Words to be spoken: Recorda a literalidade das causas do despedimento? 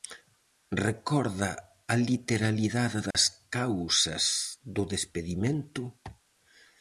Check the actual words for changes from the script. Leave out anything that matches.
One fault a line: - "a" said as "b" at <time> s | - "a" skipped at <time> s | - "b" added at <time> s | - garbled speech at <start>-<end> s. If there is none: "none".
none